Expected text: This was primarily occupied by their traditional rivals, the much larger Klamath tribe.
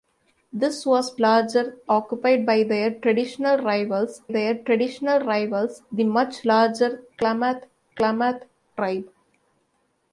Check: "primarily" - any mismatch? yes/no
yes